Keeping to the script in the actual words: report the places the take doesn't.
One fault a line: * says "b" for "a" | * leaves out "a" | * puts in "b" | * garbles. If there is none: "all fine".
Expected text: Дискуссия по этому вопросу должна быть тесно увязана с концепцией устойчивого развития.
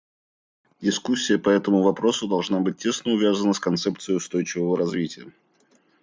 all fine